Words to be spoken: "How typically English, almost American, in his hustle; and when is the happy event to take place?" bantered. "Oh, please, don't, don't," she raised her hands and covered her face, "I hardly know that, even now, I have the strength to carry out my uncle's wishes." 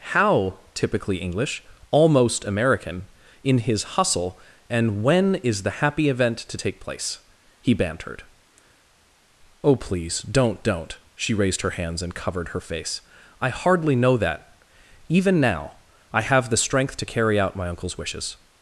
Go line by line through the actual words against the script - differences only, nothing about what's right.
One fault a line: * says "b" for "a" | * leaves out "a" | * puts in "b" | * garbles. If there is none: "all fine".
* puts in "he"